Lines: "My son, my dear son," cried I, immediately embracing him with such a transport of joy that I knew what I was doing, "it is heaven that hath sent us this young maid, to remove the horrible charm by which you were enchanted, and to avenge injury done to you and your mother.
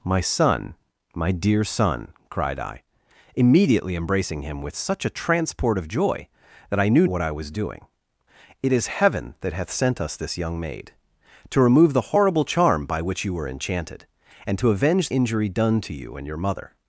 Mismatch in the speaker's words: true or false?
false